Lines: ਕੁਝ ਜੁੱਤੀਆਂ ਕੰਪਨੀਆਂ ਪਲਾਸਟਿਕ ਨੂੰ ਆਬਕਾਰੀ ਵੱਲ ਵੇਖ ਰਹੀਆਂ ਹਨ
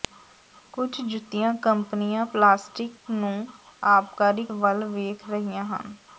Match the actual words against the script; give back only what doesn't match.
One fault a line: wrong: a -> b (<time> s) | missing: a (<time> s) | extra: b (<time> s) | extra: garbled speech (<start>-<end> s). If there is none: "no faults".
no faults